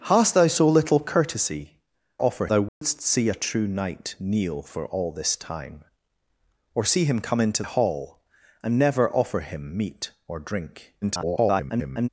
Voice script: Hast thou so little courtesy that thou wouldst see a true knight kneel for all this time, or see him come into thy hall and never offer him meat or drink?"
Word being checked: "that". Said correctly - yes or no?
no